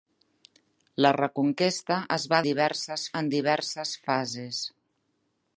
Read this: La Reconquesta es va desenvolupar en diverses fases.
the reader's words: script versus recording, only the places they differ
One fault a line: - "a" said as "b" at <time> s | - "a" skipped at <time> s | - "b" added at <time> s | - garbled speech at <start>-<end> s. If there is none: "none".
- "desenvolupar" said as "diverses" at 2.5 s